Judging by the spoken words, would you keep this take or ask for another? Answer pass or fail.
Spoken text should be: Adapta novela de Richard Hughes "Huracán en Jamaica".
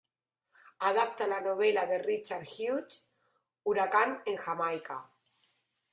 fail